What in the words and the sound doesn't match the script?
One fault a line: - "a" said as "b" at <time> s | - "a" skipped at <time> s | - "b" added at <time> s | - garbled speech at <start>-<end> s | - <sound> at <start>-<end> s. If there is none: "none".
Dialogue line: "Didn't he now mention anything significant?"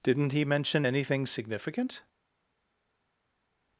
- "now" skipped at 0.5 s